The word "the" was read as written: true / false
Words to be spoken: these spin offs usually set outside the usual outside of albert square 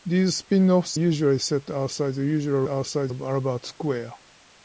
true